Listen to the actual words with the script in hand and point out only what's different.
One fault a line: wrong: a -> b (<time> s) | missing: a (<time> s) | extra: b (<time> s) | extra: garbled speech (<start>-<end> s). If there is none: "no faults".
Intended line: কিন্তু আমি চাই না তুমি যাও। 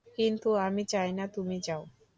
no faults